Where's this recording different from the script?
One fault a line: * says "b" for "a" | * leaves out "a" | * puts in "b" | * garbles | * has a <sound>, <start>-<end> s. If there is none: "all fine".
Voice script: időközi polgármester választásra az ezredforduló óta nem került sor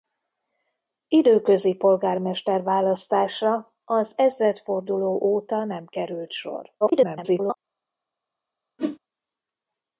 * garbles
* has a whoosh, 8.8-9.0 s